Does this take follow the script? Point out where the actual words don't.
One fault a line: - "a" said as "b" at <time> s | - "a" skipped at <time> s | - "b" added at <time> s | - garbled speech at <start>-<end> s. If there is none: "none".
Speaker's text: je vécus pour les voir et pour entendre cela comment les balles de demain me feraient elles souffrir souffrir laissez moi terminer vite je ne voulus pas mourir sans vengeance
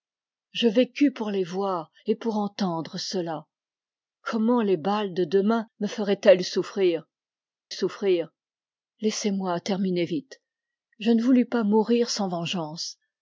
none